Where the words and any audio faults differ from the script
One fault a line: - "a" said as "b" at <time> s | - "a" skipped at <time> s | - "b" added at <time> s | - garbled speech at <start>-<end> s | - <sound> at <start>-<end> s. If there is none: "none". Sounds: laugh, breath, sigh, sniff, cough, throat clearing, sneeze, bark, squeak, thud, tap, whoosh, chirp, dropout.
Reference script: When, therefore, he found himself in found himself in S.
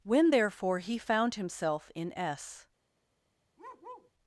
- "found himself in" skipped at 2.2 s
- bark at 3.6-4.1 s